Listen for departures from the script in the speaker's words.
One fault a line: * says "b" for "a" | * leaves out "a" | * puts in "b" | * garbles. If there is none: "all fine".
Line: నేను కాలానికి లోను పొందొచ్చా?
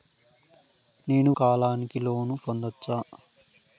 all fine